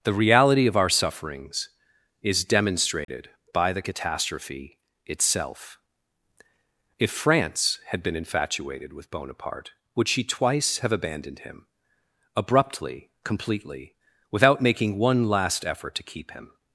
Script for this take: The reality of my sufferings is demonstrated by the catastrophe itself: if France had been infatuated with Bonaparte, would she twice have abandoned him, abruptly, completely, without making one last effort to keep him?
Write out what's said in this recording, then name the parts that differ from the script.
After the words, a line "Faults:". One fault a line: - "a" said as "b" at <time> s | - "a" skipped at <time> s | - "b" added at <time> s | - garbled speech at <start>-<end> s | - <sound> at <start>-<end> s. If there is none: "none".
The reality of our sufferings is demonstrated by the catastrophe itself: if France had been infatuated with Bonaparte, would she twice have abandoned him, abruptly, completely, without making one last effort to keep him?
Faults:
- "my" said as "our" at 0.8 s
- dropout at 3.0-3.1 s